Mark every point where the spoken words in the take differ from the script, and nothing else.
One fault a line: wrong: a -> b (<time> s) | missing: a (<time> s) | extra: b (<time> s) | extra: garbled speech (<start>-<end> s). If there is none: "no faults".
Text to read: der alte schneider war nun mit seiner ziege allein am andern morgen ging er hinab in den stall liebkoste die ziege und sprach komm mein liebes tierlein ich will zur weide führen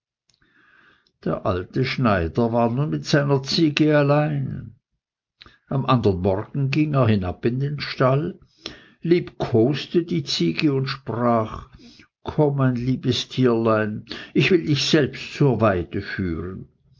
extra: dich selbst (14.6 s)